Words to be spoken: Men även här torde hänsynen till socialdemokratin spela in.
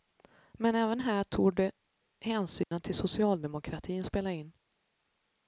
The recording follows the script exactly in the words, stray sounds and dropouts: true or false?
false